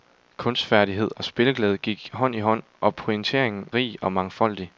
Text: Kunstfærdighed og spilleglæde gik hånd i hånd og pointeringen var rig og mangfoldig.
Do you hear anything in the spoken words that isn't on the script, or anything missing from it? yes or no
yes